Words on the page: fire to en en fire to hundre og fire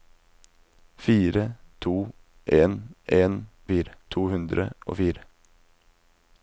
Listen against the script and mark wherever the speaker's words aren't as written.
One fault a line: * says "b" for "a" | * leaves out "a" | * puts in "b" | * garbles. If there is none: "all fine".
all fine